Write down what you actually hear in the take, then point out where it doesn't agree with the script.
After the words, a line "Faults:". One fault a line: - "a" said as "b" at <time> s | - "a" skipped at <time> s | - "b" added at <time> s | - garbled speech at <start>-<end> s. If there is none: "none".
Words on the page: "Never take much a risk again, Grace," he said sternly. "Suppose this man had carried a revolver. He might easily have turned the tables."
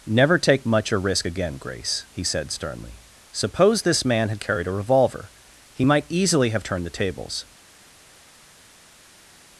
"Never take much a risk again, Grace," he said sternly. "Suppose this man had carried a revolver. He might easily have turned the tables."
Faults:
none